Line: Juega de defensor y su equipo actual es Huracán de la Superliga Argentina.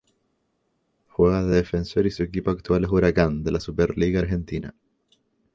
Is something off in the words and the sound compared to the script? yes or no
no